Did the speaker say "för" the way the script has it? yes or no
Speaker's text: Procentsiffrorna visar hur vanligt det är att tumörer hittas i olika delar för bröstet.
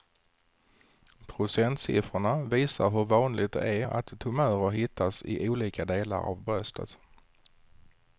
no